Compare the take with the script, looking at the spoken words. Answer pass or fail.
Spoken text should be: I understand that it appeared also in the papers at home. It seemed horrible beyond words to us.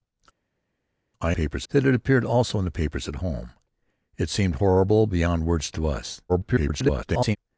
fail